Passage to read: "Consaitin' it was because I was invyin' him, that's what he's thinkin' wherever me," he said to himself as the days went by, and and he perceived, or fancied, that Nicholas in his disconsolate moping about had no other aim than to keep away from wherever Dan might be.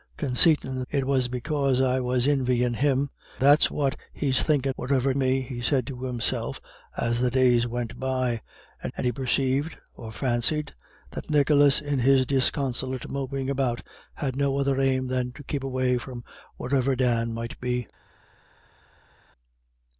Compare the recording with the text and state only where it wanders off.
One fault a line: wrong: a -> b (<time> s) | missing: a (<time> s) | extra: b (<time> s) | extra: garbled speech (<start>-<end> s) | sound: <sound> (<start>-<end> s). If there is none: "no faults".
no faults